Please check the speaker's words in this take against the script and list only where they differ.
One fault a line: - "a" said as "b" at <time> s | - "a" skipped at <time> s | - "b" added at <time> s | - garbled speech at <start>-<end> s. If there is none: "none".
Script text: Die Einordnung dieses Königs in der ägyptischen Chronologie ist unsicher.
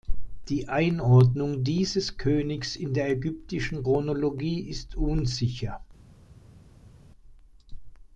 none